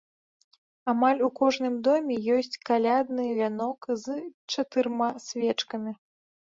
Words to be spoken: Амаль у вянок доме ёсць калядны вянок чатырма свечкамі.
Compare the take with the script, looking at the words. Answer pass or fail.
fail